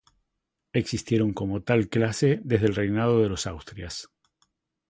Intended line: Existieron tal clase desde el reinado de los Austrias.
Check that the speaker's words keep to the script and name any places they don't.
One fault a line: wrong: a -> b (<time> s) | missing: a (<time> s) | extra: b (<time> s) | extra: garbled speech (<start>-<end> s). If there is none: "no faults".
extra: como (1.3 s)